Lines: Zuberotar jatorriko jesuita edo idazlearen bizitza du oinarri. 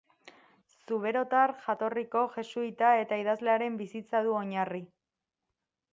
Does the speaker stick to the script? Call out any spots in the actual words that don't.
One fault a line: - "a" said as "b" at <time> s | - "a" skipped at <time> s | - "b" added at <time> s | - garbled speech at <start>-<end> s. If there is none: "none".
- "edo" said as "eta" at 3.0 s